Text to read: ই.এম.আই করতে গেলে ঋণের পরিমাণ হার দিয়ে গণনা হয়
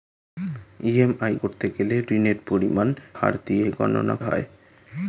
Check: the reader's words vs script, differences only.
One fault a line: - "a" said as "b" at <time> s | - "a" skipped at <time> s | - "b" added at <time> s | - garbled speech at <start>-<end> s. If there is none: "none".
none